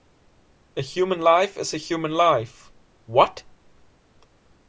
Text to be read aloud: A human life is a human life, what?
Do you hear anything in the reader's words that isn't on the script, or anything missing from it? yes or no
no